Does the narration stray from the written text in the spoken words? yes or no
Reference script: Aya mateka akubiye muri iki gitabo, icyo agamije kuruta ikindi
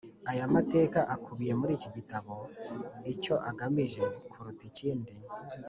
no